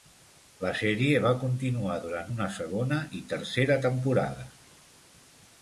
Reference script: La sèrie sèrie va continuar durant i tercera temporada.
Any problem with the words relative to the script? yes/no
yes